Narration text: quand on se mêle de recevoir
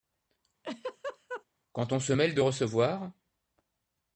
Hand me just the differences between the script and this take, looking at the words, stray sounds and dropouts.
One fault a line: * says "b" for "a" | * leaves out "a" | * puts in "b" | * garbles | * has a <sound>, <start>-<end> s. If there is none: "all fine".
* has a laugh, 0.6-1.4 s